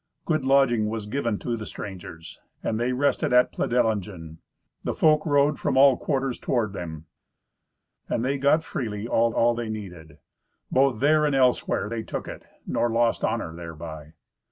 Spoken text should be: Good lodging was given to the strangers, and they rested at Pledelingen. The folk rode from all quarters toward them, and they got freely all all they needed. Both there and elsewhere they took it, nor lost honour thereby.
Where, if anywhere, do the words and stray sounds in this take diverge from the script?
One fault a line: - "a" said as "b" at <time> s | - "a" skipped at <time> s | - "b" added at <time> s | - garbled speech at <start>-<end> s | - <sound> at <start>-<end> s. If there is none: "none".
none